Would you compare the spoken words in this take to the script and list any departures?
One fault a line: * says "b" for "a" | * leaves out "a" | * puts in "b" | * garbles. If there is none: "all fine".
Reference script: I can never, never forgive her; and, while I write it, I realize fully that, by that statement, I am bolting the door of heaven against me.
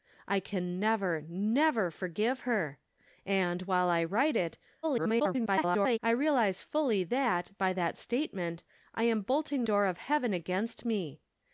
* garbles
* leaves out "the"